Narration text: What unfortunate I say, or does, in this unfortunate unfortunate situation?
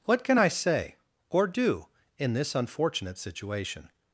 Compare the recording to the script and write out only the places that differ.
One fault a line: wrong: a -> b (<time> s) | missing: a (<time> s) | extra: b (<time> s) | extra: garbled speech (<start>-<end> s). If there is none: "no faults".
wrong: unfortunate -> can (0.2 s)
wrong: does -> do (1.5 s)
missing: unfortunate (3.2 s)